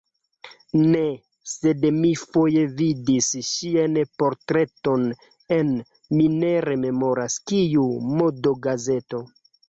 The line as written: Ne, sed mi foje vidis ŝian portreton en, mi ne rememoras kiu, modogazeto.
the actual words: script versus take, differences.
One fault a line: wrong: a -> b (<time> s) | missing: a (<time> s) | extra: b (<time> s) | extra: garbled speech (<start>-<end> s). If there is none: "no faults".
no faults